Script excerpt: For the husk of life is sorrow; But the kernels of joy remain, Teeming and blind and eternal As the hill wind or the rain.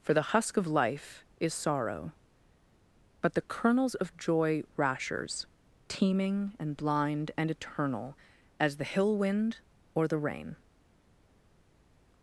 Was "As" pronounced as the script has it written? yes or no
yes